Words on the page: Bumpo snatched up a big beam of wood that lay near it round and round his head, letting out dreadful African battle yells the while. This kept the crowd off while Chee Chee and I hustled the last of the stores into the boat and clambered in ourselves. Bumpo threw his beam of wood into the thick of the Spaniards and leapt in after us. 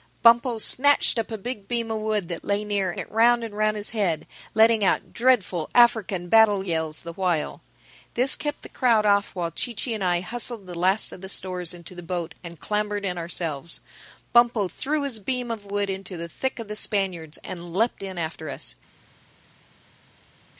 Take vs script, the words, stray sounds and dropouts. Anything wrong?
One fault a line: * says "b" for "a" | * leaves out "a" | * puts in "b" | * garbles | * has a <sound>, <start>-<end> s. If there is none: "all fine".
all fine